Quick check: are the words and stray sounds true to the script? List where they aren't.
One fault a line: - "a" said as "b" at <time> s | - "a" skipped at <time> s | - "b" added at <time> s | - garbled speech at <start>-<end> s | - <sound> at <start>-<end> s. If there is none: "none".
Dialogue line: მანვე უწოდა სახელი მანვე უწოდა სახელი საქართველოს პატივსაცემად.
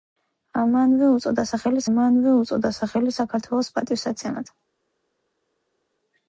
none